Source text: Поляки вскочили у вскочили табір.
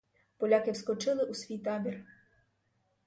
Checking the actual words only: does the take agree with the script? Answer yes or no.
no